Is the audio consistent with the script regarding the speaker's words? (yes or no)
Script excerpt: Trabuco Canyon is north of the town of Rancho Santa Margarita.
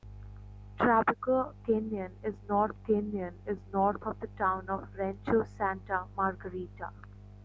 no